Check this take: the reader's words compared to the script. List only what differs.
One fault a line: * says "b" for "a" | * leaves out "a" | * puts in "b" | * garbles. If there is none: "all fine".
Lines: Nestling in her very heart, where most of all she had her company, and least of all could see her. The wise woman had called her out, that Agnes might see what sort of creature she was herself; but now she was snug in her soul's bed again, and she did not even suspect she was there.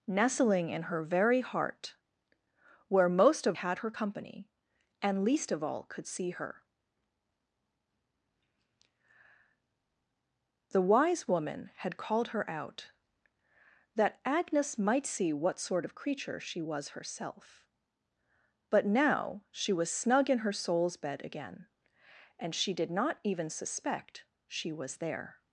* leaves out "all she"